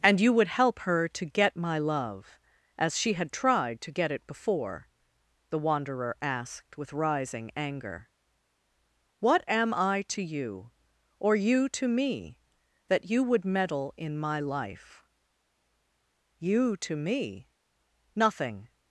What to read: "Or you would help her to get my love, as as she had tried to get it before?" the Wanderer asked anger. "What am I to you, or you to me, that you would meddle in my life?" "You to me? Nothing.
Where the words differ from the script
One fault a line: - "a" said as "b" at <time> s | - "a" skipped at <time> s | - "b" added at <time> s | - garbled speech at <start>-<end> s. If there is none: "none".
- "Or" said as "And" at 0.0 s
- "as" skipped at 3.0 s
- "with rising" added at 6.8 s